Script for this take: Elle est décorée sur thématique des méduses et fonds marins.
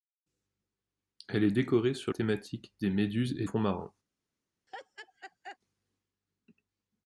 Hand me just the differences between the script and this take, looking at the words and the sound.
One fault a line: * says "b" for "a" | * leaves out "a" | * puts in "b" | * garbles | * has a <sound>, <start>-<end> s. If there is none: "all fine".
* has a laugh, 4.7-5.6 s